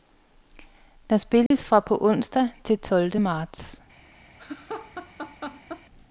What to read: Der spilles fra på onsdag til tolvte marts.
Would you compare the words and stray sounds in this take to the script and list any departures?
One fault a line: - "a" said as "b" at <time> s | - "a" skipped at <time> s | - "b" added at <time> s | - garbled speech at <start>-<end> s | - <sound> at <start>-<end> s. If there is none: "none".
- dropout at 1.5-1.5 s
- laugh at 4.4-5.8 s